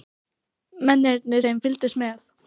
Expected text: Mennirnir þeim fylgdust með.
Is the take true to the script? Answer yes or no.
yes